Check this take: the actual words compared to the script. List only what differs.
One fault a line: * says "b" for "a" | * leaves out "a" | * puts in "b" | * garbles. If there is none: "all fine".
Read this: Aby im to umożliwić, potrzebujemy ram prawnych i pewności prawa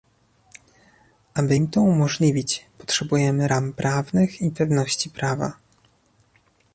all fine